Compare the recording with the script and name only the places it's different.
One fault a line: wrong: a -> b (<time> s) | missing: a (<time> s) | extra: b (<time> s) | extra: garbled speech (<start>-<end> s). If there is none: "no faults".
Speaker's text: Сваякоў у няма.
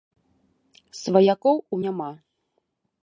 no faults